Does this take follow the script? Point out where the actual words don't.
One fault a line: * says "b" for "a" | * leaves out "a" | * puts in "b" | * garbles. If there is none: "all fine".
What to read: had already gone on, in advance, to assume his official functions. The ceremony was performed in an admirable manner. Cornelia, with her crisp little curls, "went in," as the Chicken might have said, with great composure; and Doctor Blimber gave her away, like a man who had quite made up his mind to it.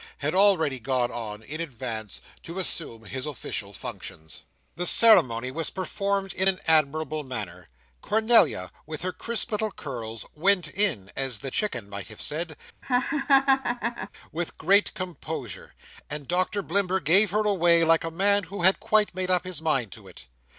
all fine